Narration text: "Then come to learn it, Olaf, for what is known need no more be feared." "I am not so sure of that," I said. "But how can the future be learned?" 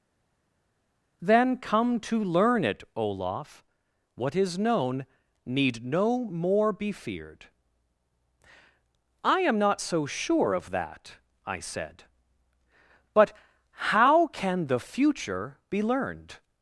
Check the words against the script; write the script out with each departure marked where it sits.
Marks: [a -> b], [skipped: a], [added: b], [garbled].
"Then come to learn it, Olaf, [skipped: for] what is known need no more be feared." "I am not so sure of that," I said. "But how can the future be learned?"